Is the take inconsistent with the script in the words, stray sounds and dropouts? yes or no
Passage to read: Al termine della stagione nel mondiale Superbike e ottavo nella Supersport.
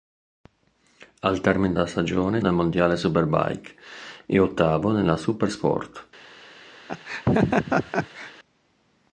yes